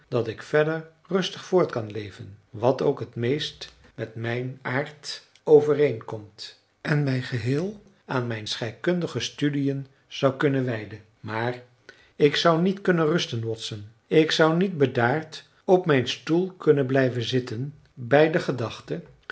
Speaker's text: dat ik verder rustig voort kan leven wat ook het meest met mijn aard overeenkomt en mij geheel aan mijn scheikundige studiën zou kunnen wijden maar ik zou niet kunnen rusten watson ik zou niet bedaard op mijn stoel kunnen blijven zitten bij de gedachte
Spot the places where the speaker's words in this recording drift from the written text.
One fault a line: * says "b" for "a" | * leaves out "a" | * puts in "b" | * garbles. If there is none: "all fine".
all fine